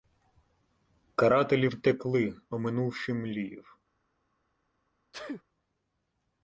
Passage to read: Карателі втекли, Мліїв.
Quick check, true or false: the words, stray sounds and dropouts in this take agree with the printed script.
false